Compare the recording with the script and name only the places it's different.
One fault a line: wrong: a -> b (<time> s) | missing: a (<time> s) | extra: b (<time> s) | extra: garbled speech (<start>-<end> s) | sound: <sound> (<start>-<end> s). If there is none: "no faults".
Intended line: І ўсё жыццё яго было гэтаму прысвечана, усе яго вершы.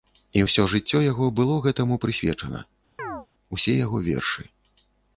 sound: chirp (3.0-3.3 s)